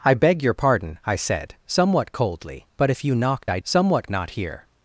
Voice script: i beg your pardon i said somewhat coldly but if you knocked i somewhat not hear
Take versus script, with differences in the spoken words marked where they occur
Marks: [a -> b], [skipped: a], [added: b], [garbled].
i beg your pardon i said somewhat coldly but if you knocked i somewhat not hear